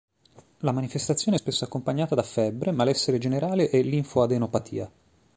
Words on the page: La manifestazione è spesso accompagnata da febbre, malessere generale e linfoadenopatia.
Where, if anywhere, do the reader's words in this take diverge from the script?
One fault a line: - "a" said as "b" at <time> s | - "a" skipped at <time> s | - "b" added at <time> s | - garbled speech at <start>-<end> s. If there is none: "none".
none